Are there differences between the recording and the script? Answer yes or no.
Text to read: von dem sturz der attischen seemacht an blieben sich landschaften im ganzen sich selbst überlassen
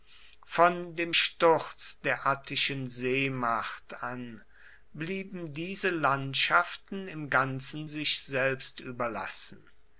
yes